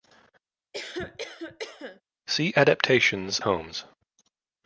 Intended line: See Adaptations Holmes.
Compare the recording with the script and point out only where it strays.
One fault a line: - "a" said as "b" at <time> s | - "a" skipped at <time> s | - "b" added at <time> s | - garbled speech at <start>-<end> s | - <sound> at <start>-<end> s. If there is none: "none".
- cough at 0.7-2.0 s